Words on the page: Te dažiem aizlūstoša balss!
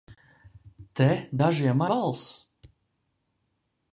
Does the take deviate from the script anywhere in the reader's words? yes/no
yes